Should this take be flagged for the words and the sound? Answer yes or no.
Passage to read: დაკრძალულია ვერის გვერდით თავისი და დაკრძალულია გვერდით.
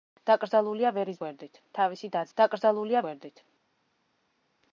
no